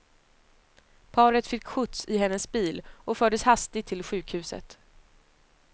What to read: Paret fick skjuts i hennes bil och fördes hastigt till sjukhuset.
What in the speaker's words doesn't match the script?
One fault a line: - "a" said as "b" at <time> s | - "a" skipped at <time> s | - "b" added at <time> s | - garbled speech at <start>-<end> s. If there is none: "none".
none